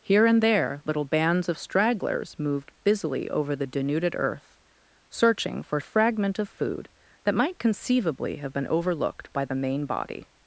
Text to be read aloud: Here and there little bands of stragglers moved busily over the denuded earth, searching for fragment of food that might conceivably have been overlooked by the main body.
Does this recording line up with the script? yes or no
yes